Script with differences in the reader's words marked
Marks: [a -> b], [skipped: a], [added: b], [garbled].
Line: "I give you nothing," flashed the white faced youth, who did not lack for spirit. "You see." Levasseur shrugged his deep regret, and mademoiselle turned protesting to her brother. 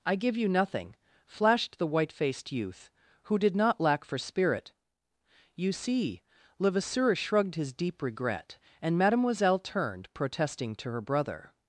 "I give you nothing," flashed the white faced youth, who did not lack for spirit. "You see." Levasseur shrugged his deep regret, and mademoiselle turned protesting to her brother.